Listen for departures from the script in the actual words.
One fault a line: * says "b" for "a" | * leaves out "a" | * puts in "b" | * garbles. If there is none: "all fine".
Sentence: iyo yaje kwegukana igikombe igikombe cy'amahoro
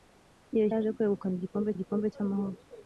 all fine